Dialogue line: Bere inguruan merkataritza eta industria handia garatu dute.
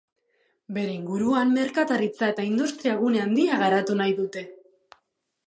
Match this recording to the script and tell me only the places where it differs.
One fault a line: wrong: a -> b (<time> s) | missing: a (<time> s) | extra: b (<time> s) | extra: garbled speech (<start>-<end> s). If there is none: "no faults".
extra: gune (3.0 s)
extra: nahi (4.0 s)